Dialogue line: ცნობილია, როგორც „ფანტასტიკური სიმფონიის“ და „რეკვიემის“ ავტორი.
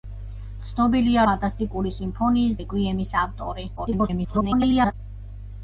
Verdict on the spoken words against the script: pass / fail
fail